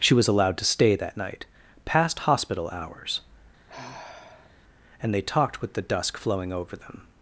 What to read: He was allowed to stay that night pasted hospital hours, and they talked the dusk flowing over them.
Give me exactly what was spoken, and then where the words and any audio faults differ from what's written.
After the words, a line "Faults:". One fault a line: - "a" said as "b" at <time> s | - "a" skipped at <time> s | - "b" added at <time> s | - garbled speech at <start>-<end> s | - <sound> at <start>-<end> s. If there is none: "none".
She was allowed to stay that night past hospital hours, and they talked with the dusk flowing over them.
Faults:
- "He" said as "She" at 0.0 s
- "pasted" said as "past" at 1.8 s
- sigh at 3.7-4.5 s
- "with" added at 5.6 s